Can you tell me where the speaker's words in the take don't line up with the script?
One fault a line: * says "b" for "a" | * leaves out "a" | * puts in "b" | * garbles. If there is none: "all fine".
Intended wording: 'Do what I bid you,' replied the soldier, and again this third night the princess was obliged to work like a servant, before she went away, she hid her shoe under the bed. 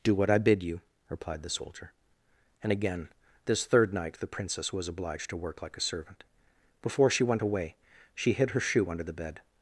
all fine